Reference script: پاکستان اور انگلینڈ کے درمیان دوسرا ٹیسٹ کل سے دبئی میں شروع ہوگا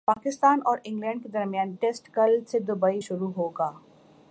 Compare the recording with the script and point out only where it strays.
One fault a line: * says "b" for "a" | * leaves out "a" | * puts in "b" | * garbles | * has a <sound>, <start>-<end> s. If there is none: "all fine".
* leaves out "دوسرا"
* leaves out "میں"